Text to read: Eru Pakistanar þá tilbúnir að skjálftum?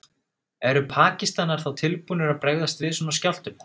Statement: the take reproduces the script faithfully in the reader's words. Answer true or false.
false